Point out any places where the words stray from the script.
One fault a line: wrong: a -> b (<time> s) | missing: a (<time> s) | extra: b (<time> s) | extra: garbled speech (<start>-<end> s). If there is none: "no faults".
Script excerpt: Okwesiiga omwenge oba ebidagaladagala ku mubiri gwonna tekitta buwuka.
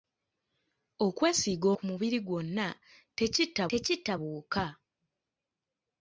missing: omwenge oba ebidagaladagala (1.7 s)
extra: tekitta (3.7 s)